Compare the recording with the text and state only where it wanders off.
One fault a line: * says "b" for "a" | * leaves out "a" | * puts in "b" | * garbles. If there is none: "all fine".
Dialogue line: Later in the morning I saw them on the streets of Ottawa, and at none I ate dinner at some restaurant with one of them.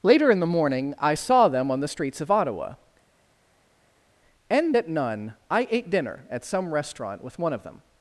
all fine